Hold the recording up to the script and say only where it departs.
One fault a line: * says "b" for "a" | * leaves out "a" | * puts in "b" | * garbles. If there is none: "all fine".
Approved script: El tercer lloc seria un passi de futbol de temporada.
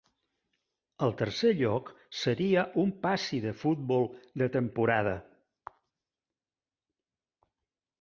all fine